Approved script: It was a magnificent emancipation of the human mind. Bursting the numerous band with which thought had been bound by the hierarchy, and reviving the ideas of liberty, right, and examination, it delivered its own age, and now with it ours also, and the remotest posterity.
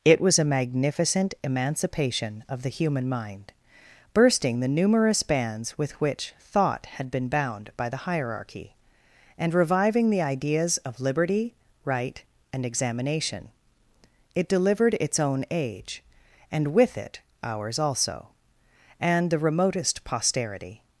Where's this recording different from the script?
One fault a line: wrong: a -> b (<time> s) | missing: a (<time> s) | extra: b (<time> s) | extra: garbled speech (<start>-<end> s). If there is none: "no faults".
wrong: band -> bands (5.2 s)
missing: now (16.7 s)